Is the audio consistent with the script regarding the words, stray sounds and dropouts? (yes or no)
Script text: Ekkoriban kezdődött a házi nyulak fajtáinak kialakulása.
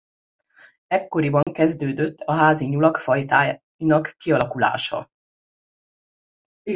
no